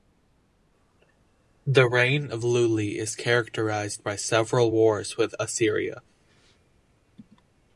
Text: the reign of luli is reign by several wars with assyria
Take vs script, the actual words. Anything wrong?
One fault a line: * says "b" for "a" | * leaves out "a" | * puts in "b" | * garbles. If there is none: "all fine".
* says "characterized" for "reign"